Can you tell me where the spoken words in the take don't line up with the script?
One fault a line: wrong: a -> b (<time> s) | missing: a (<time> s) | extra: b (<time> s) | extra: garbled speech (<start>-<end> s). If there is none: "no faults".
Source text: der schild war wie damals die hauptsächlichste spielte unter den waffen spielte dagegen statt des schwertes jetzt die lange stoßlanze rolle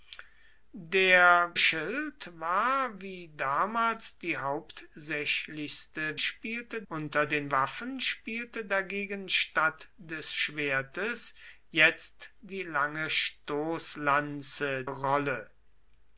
no faults